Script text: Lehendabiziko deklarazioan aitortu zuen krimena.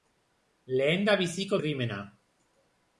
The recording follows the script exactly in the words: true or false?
false